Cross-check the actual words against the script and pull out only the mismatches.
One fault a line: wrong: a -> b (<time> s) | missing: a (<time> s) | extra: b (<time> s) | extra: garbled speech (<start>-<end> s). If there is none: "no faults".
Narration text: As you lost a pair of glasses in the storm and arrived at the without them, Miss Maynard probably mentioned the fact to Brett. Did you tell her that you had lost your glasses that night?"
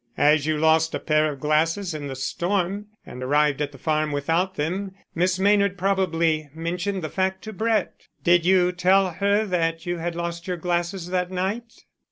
extra: farm (3.8 s)